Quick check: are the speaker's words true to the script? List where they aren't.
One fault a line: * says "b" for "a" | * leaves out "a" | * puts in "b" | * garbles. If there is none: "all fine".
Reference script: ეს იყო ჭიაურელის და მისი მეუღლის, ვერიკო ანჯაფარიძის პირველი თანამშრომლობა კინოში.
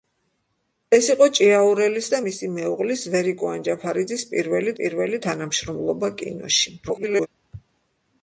* puts in "პირველი"
* garbles